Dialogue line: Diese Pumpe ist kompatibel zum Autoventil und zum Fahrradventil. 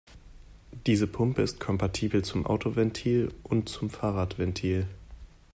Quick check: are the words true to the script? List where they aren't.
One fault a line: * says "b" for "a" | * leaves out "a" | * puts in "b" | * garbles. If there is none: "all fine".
all fine